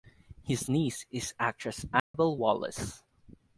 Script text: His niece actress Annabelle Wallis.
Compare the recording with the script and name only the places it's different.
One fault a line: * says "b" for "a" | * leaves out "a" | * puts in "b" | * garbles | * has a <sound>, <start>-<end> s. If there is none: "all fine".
* puts in "is"
* has a dropout, 2.0-2.1 s